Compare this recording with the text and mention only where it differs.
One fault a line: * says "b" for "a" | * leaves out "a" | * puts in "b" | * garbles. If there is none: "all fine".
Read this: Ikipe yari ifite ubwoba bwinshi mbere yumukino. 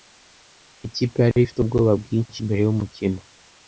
all fine